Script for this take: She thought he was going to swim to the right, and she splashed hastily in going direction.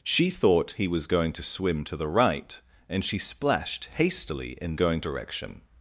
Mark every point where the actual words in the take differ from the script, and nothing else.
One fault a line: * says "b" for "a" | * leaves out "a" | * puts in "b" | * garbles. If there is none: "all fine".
all fine